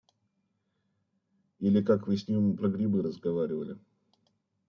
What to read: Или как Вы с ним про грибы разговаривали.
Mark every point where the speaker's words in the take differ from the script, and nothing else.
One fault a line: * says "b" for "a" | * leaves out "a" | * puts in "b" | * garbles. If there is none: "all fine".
all fine